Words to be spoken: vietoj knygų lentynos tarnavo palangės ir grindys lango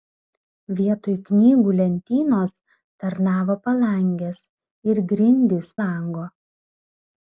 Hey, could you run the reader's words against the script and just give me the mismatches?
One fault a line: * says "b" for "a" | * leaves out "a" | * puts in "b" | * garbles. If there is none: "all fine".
all fine